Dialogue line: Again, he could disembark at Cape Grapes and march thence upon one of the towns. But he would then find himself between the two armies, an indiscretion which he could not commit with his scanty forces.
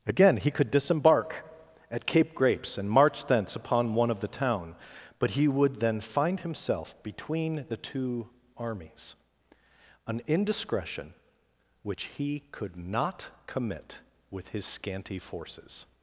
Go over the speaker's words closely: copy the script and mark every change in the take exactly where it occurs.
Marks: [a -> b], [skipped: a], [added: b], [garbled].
Again, he could disembark at Cape Grapes and march thence upon one of the [towns. -> town] But he would then find himself between the two armies, an indiscretion which he could not commit with his scanty forces.